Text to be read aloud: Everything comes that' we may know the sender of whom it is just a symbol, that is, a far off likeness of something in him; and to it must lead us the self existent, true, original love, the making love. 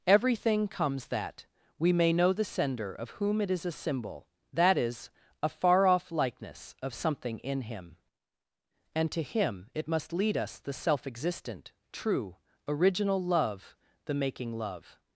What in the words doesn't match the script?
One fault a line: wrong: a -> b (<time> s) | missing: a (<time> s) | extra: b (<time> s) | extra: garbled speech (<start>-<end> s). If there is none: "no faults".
missing: just (3.6 s)
extra: him (9.2 s)